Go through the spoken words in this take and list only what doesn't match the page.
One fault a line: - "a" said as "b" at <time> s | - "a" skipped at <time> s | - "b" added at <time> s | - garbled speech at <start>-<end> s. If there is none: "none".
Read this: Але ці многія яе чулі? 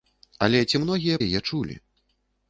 none